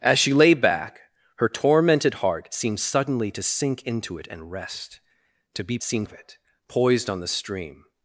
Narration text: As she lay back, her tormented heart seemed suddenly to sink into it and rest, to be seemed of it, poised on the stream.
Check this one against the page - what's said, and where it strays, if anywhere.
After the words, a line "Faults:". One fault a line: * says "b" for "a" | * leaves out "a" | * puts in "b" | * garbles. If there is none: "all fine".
As she lay back, her tormented heart seemed suddenly to sink into it and rest, to be seemed of it, poised on the stream.
Faults:
all fine